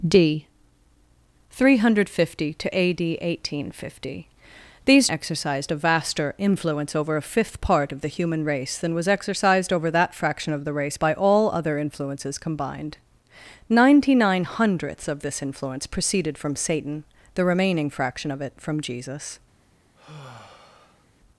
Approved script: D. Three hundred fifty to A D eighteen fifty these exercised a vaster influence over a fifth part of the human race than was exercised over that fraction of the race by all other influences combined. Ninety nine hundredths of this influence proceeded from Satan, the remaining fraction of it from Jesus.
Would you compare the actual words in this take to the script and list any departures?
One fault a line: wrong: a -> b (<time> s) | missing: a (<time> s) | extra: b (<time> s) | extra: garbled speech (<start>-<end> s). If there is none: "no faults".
no faults